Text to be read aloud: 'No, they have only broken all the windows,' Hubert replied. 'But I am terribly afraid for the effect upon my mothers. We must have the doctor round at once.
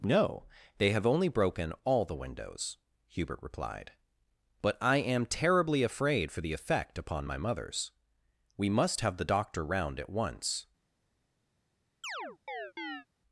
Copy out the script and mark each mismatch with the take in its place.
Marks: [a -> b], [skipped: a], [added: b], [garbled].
'No, they have only broken all the windows,' Hubert replied. 'But I am terribly afraid for the effect upon my mothers. We must have the doctor round at once.